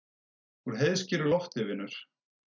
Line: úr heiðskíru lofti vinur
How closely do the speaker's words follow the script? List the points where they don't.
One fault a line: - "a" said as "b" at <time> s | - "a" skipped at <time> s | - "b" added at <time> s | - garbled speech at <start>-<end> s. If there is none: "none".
none